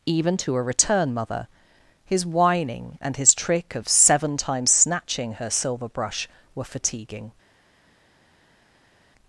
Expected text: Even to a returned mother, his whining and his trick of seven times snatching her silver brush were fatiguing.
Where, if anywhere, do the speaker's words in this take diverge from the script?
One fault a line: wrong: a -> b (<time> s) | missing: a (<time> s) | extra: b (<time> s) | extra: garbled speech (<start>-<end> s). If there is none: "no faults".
wrong: returned -> return (0.6 s)